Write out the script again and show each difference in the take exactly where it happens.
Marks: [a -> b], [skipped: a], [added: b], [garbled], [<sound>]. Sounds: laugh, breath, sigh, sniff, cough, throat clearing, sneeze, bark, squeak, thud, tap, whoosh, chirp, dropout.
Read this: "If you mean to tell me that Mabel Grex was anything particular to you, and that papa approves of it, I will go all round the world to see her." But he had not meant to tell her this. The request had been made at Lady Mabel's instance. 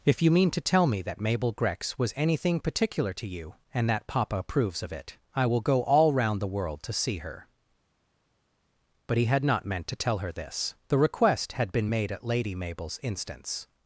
"If you mean to tell me that Mabel Grex was anything particular to you, and that papa approves of it, I will go all round the world to see her." But he had not meant to tell her this. The request had been made at Lady Mabel's instance.